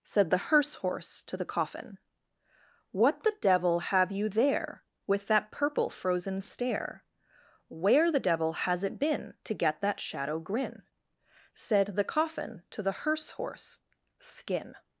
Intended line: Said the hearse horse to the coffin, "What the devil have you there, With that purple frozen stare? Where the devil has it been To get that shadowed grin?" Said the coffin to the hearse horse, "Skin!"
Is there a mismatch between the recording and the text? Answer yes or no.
yes